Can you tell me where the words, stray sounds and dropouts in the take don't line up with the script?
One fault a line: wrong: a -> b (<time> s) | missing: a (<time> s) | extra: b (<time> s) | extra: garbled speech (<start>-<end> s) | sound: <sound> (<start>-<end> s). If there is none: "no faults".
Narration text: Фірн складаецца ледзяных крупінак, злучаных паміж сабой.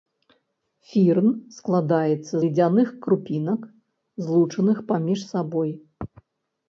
no faults